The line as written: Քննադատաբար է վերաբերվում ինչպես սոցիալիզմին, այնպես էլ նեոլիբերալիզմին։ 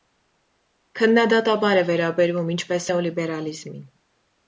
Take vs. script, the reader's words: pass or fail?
fail